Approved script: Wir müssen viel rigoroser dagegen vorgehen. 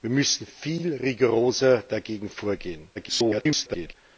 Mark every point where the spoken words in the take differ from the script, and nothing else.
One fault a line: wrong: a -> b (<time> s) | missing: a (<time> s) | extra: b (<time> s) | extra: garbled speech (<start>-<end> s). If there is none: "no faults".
extra: garbled speech (2.9-3.9 s)